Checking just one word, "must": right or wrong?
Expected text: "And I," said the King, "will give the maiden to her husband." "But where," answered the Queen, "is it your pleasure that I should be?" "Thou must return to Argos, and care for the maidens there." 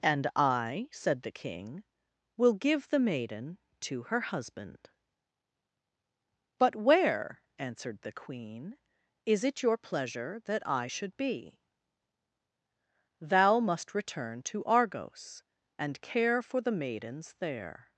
right